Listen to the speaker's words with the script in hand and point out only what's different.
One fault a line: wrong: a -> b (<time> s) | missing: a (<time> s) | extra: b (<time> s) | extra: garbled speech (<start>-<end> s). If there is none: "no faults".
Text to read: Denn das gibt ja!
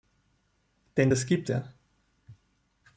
no faults